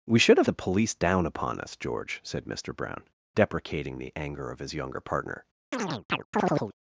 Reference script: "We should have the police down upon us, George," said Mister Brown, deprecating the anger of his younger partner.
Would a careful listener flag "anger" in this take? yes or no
no